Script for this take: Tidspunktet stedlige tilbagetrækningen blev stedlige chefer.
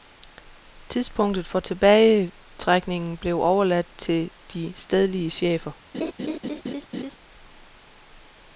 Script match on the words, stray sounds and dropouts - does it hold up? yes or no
no